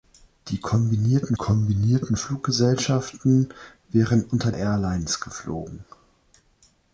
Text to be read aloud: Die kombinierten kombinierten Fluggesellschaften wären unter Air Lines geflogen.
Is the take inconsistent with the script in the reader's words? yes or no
no